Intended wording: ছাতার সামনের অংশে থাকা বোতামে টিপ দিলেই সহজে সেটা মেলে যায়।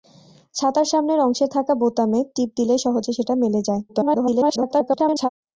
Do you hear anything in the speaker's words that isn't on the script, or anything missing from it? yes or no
yes